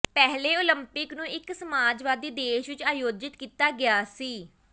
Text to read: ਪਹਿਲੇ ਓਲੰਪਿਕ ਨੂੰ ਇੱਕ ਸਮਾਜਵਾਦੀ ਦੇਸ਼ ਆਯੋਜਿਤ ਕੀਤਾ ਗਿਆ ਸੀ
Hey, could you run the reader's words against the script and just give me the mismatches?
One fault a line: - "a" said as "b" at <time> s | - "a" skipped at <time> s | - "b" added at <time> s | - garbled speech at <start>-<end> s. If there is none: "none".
- "ਵਿੱਚ" added at 2.7 s